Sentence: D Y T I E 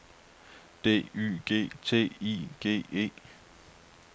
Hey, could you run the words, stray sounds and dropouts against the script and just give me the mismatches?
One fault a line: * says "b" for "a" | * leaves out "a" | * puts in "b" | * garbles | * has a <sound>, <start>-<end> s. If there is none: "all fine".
* puts in "G"
* puts in "G"